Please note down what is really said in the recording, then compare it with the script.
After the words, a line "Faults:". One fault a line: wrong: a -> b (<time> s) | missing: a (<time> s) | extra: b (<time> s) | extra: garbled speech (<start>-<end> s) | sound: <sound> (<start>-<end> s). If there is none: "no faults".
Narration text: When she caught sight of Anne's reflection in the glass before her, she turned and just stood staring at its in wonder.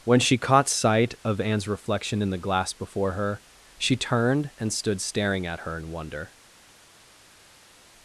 When she caught sight of Anne's reflection in the glass before her, she turned and stood staring at her in wonder.
Faults:
missing: just (4.7 s)
wrong: its -> her (5.6 s)